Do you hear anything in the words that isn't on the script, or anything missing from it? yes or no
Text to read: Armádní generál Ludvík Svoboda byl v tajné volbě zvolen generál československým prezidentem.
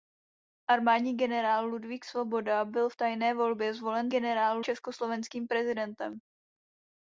no